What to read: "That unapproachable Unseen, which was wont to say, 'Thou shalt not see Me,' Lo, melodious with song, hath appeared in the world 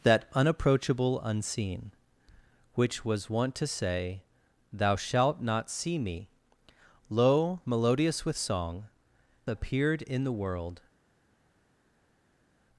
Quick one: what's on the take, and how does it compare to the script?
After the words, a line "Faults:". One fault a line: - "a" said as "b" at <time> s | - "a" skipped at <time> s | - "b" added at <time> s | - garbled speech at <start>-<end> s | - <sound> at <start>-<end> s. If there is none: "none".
"That unapproachable Unseen, which was wont to say, 'Thou shalt not see Me,' Lo, melodious with song, appeared in the world
Faults:
- "hath" skipped at 8.9 s